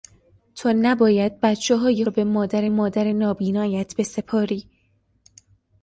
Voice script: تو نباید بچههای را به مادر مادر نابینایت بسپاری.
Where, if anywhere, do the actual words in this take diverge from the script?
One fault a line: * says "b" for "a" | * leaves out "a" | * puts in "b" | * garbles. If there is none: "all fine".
all fine